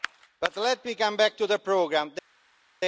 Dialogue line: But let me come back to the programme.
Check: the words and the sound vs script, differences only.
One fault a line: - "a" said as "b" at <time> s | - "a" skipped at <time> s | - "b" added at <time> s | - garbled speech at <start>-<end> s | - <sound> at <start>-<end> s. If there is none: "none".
none